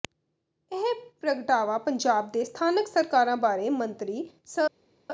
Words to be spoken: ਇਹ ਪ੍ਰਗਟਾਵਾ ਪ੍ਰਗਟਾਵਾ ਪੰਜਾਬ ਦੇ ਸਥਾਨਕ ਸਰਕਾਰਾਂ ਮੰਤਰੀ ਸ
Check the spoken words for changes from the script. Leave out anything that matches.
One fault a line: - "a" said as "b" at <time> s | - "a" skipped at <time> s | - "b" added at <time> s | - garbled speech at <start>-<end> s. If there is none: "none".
- "ਪ੍ਰਗਟਾਵਾ" skipped at 1.8 s
- "ਬਾਰੇ" added at 3.4 s